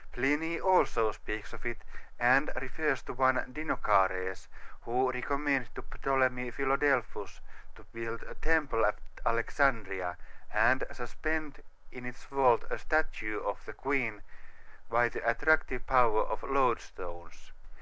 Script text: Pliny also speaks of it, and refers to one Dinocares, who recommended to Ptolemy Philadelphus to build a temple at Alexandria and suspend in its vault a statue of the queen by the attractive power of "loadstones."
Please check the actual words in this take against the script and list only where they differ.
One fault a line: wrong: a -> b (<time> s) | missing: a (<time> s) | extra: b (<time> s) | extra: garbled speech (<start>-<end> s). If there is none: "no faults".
no faults